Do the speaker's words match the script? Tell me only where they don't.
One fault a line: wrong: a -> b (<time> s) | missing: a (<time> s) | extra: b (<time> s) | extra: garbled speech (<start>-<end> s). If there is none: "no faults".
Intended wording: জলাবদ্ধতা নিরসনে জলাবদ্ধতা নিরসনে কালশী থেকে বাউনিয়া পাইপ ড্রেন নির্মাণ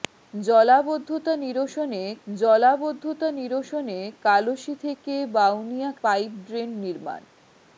no faults